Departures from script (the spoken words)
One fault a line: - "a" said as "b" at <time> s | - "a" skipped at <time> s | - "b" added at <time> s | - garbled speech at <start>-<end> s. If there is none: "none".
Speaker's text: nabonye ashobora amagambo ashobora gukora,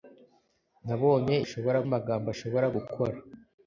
none